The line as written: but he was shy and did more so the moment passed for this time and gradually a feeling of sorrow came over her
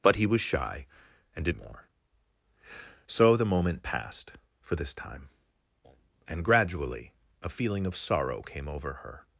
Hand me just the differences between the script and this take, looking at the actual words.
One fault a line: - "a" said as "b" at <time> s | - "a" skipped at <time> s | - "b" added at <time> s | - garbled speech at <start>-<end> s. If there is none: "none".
none